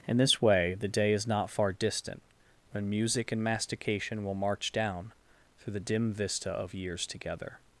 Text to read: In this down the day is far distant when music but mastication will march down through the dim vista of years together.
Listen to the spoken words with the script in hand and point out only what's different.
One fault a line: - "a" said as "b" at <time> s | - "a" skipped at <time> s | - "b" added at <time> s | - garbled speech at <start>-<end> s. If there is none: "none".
- "down" said as "way" at 0.4 s
- "not" added at 1.3 s
- "but" said as "and" at 3.3 s